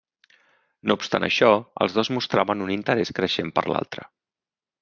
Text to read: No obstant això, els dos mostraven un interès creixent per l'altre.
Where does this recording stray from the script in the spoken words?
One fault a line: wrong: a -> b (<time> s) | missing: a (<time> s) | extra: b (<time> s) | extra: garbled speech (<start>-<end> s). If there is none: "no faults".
no faults